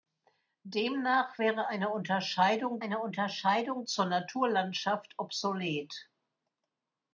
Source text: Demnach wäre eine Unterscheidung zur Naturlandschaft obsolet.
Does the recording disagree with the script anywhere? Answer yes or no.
yes